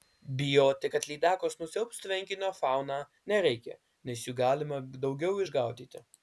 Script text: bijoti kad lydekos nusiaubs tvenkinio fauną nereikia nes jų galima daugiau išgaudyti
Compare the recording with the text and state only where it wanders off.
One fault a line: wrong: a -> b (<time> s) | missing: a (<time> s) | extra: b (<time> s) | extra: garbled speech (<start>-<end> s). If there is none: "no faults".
no faults